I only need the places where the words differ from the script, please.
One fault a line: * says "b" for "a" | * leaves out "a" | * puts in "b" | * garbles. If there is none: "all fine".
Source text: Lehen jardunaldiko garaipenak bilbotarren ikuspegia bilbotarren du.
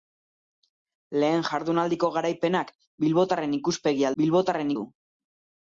all fine